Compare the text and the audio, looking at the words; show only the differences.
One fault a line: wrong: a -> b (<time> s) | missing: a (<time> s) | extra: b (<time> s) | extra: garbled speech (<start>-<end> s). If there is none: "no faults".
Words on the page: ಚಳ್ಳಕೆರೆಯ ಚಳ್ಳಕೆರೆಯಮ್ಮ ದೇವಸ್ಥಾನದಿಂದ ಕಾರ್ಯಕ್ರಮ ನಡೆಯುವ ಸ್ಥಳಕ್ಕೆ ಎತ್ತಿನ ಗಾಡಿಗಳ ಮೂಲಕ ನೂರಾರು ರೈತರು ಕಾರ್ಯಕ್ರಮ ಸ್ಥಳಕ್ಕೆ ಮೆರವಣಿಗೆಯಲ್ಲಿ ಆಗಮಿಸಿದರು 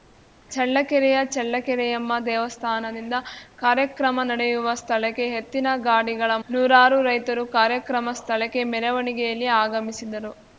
missing: ಮೂಲಕ (6.3 s)